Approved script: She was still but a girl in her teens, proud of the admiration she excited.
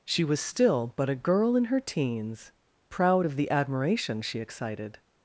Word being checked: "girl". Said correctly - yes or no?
yes